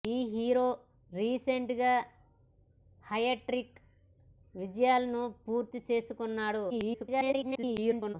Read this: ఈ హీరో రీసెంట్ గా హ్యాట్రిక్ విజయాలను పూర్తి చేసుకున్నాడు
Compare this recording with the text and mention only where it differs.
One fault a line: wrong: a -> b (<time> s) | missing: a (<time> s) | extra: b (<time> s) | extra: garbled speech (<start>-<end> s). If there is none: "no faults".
extra: garbled speech (6.7-8.2 s)